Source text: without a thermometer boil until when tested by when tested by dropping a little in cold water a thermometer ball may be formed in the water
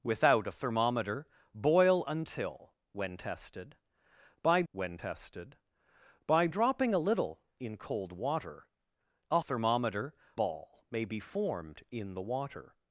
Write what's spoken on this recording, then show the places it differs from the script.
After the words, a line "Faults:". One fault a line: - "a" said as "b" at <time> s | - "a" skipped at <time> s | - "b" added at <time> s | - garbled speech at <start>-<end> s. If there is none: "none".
without a thermometer boil until when tested by when tested by dropping a little in cold water a thermometer ball may be formed in the water
Faults:
none